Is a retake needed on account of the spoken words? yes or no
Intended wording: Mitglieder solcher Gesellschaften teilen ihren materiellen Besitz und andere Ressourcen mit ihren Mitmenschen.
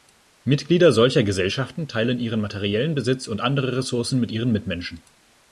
no